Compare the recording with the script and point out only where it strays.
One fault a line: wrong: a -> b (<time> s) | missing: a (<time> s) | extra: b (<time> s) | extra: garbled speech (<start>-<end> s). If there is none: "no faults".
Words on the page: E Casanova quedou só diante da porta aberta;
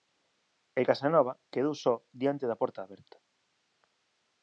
no faults